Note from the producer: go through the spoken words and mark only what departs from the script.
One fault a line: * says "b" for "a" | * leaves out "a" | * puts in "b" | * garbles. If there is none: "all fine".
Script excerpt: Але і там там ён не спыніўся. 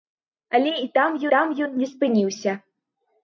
all fine